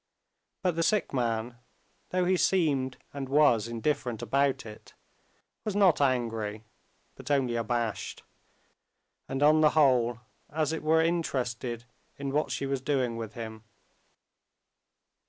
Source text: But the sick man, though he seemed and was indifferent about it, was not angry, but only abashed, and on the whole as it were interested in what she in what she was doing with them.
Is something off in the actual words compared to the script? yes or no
yes